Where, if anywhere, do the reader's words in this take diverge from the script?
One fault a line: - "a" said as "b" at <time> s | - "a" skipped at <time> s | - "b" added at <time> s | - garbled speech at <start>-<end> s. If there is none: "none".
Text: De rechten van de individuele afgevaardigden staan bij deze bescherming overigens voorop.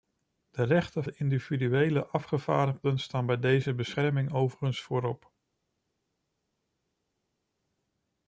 - "van" skipped at 1.0 s